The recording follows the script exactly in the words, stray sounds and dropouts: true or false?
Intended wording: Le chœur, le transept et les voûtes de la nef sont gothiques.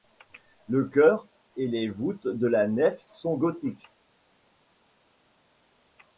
false